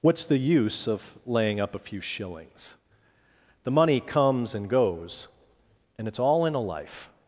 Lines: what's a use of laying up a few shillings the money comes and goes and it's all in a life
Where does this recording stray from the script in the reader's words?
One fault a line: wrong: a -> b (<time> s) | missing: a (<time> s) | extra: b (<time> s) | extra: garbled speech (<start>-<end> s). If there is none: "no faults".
wrong: a -> the (0.2 s)